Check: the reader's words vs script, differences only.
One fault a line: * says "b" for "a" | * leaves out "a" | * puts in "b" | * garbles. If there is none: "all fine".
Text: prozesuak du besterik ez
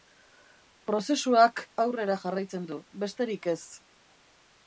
* puts in "aurrera jarraitzen"